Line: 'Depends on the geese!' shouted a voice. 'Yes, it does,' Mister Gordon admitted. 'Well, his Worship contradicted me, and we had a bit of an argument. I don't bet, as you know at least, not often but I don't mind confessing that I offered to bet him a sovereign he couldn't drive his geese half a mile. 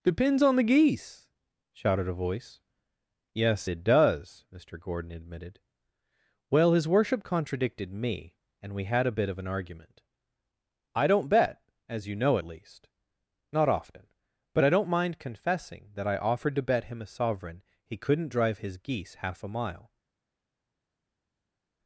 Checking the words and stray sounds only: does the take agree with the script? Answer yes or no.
yes